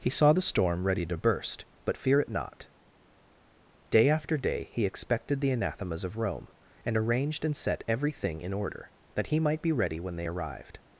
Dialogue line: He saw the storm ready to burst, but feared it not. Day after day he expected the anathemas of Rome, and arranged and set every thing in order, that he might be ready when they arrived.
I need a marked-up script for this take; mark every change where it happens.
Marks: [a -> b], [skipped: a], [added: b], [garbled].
He saw the storm ready to burst, but [feared -> fear] it not. Day after day he expected the anathemas of Rome, and arranged and set every thing in order, that he might be ready when they arrived.